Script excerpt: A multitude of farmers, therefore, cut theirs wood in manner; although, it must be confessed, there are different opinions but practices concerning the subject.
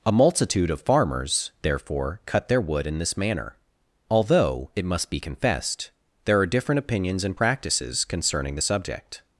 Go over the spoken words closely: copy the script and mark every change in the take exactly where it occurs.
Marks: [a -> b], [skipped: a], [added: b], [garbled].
A multitude of farmers, therefore, cut [theirs -> their] wood in [added: this] manner; although, it must be confessed, there are different opinions [but -> and] practices concerning the subject.